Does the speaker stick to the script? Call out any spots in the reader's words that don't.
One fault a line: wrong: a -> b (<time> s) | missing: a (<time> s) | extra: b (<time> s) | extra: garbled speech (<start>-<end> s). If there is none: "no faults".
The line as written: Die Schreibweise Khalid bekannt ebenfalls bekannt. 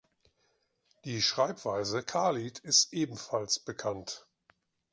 wrong: bekannt -> ist (2.6 s)